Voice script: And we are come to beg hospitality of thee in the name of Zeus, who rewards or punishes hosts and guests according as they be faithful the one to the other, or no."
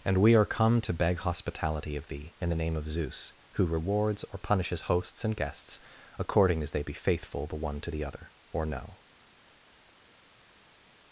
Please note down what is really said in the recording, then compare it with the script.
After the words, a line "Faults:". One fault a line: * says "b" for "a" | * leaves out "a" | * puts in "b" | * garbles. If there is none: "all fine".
And we are come to beg hospitality of thee in the name of Zeus, who rewards or punishes hosts and guests according as they be faithful the one to the other, or no."
Faults:
all fine